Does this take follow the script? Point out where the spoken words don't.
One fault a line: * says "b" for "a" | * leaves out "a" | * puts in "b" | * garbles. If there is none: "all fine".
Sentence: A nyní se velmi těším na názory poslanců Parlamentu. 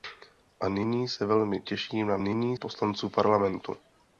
* says "nyní" for "názory"